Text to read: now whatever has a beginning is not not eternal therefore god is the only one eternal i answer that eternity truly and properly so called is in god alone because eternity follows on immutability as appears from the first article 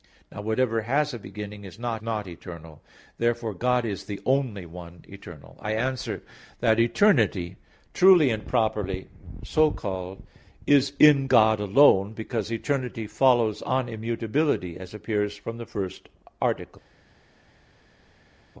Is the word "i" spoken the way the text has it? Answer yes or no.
yes